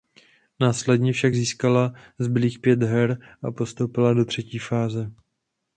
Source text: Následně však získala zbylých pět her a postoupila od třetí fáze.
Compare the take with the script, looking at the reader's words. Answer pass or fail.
fail